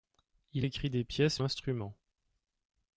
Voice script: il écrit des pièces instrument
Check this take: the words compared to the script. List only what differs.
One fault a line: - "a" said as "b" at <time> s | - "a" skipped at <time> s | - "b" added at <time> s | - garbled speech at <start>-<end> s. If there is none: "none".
none